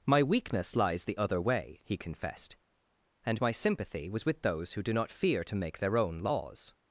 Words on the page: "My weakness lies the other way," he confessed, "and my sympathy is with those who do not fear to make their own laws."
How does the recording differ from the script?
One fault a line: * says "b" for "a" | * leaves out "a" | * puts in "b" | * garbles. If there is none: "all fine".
* says "was" for "is"